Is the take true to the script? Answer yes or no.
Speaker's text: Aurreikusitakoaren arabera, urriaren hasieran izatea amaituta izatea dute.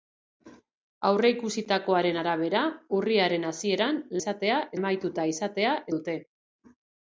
yes